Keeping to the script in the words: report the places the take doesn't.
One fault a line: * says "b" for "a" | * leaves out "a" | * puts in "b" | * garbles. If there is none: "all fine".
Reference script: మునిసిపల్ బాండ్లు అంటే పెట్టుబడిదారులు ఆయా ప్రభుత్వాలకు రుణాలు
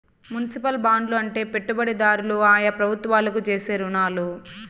* puts in "చేసే"